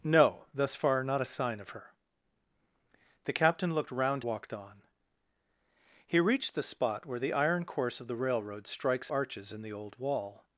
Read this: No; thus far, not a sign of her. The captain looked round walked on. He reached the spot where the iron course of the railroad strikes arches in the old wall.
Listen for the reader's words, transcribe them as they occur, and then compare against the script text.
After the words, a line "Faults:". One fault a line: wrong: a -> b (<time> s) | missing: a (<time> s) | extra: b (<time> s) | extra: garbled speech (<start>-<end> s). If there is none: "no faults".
No; thus far, not a sign of her. The captain looked round walked on. He reached the spot where the iron course of the railroad strikes arches in the old wall.
Faults:
no faults